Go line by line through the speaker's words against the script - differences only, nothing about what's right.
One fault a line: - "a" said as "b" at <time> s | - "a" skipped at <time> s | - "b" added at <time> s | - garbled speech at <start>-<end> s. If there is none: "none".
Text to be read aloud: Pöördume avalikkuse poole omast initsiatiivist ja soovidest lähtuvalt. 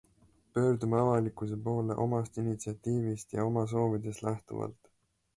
- "oma" added at 3.5 s